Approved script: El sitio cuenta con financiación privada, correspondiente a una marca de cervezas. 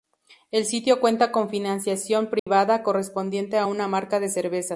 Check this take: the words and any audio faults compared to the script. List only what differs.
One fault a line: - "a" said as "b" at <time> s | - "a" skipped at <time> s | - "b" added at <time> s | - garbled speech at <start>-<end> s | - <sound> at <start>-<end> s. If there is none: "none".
- dropout at 2.4-2.5 s